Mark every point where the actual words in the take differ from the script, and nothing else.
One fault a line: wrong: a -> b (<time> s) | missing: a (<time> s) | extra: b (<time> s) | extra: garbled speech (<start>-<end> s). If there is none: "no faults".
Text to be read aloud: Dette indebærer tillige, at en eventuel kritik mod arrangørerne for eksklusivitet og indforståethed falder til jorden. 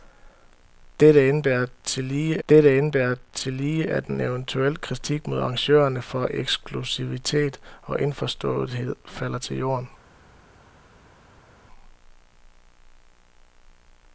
extra: dette indebærer tillige (2.5 s)